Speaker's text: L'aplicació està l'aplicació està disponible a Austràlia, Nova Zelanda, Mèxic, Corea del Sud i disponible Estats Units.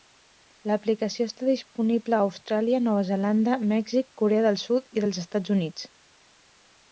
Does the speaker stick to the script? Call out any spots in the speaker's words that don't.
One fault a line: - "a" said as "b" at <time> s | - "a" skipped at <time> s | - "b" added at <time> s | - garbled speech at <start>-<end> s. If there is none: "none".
- "l'aplicació està" skipped at 1.5 s
- "disponible" said as "dels" at 5.0 s